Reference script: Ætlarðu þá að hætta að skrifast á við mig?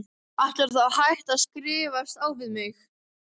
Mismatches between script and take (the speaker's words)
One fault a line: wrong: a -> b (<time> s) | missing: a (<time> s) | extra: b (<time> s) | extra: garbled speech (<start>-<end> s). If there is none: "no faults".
no faults